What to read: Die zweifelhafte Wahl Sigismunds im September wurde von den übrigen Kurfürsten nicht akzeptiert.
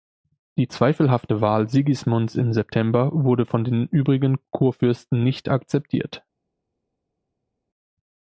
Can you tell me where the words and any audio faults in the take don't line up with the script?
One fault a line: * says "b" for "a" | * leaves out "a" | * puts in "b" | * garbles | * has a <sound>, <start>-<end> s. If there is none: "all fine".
all fine